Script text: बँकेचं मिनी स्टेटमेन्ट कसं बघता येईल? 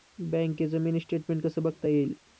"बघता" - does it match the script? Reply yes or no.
yes